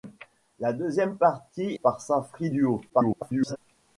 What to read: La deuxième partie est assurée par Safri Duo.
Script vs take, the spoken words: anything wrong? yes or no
yes